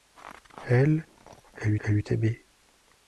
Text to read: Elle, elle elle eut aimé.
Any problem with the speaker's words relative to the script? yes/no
no